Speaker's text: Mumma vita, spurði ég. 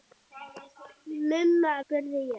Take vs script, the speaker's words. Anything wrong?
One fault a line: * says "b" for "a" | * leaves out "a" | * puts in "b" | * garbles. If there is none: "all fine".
* leaves out "vita"